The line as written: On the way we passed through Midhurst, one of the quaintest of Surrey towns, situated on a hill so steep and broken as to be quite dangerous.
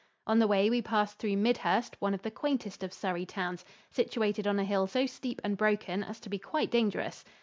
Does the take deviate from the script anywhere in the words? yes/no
no